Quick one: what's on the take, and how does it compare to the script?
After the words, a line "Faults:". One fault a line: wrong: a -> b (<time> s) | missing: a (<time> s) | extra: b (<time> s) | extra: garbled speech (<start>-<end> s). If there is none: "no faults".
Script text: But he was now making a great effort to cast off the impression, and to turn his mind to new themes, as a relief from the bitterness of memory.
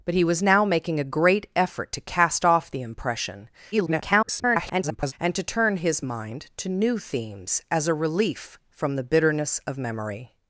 But he was now making a great effort to cast off the impression, [garbled] and to turn his mind to new themes, as a relief from the bitterness of memory.
Faults:
extra: garbled speech (3.7-5.1 s)